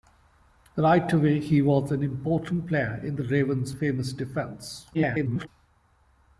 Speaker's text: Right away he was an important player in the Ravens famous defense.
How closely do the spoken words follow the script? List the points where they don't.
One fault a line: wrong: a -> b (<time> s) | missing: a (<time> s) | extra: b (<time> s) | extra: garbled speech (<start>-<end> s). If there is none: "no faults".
extra: garbled speech (4.9-5.5 s)